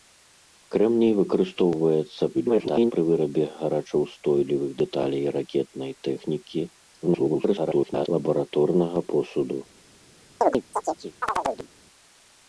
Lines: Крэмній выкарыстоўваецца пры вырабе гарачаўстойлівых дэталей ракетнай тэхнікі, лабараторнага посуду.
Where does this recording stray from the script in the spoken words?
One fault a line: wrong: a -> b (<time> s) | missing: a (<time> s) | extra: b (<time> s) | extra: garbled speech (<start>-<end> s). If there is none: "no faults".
extra: garbled speech (2.3-2.9 s)
extra: garbled speech (7.0-8.1 s)